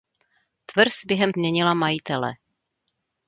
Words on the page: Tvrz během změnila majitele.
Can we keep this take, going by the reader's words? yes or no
yes